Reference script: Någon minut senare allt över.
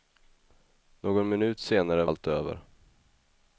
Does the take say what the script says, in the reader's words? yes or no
yes